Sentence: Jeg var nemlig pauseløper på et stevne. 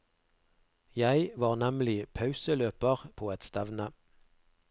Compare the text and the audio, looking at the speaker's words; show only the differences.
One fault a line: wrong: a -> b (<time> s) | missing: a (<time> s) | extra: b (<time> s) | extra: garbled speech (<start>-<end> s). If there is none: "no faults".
no faults